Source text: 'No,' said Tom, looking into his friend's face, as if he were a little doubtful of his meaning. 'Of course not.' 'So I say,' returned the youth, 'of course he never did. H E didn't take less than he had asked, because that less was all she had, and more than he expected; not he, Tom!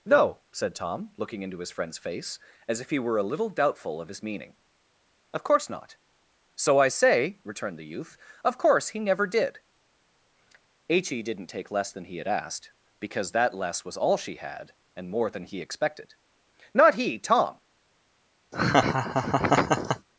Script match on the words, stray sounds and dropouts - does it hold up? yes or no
no